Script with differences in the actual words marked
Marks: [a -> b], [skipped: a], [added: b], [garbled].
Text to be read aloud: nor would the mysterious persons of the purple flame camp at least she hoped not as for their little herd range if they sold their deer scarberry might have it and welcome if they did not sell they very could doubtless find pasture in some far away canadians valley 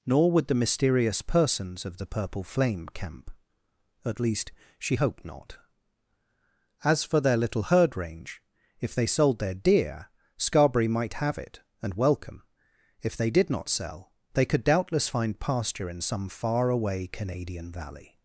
nor would the mysterious persons of the purple flame camp at least she hoped not as for their little herd range if they sold their deer scarberry might have it and welcome if they did not sell they [skipped: very] could doubtless find pasture in some far away [canadians -> canadian] valley